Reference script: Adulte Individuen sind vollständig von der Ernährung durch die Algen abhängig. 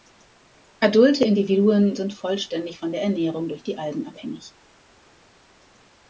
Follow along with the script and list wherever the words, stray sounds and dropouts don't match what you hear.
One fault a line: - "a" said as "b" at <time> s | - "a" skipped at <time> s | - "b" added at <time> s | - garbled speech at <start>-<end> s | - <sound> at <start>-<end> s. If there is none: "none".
none